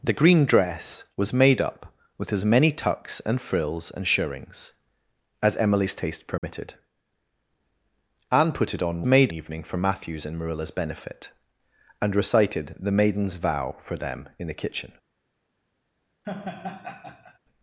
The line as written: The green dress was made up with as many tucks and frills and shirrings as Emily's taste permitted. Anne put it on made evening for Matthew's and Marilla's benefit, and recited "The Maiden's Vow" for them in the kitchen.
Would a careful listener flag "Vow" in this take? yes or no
no